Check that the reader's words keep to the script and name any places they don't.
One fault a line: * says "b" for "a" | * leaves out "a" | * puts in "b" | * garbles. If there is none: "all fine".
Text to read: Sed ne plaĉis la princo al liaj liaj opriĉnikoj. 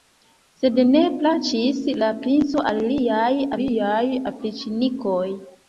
all fine